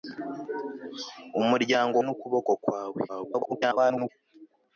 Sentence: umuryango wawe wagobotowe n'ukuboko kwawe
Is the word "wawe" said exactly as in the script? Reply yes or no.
no